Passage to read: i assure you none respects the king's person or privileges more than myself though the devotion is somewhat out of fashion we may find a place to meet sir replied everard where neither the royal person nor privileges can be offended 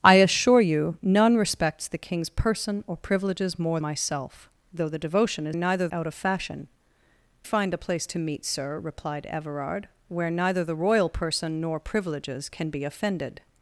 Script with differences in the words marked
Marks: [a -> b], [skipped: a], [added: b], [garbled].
i assure you none respects the king's person or privileges more [skipped: than] myself though the devotion is [somewhat -> neither] out of fashion [skipped: we may] find a place to meet sir replied everard where neither the royal person nor privileges can be offended